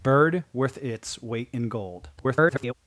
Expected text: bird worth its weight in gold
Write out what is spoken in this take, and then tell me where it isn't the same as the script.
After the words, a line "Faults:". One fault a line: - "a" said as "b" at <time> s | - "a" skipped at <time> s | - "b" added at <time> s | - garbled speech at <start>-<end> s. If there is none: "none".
bird worth its weight in gold [garbled]
Faults:
- garbled speech at 2.2-2.7 s